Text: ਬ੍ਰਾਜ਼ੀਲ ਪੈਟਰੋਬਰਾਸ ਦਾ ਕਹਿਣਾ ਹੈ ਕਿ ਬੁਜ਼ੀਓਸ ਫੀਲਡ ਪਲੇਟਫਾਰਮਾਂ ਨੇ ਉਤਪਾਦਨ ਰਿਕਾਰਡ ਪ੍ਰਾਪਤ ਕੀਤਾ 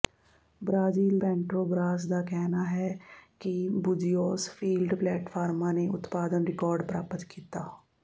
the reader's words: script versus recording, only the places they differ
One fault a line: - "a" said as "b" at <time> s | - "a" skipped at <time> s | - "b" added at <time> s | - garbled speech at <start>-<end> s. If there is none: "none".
none